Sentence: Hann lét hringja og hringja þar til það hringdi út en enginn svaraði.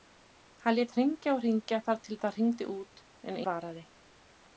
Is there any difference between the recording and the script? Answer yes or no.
yes